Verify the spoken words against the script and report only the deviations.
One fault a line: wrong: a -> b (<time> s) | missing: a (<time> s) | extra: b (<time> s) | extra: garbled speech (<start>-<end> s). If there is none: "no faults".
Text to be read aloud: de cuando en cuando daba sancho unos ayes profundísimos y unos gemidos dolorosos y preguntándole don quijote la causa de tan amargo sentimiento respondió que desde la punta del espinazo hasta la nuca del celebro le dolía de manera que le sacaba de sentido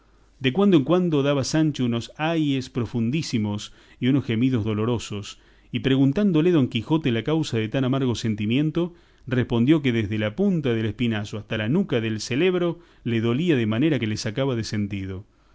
no faults